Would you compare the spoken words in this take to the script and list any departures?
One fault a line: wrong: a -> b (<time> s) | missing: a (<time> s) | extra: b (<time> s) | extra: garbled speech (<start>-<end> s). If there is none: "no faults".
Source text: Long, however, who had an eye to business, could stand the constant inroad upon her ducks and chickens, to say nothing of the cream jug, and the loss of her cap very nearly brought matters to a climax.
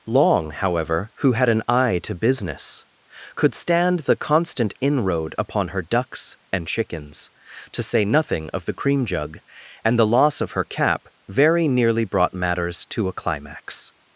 no faults